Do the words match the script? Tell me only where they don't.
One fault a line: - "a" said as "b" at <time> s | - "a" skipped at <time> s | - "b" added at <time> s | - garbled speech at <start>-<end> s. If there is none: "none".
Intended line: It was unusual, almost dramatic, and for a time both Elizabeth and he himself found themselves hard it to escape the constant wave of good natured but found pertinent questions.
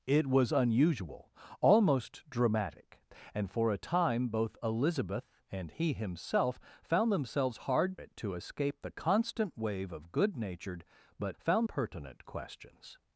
none